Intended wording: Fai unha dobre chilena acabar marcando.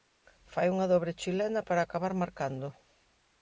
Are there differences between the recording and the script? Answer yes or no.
yes